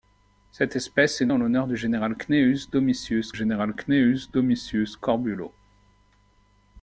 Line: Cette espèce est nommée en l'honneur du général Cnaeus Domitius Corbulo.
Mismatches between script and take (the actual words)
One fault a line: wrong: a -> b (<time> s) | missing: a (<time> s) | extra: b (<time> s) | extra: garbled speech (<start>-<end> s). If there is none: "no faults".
missing: nommée (1.3 s)
extra: général Cnaeus Domitius (3.3 s)